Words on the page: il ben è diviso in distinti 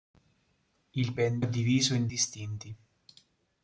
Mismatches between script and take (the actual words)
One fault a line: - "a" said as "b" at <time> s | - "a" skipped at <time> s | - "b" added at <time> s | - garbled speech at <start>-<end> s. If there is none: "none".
none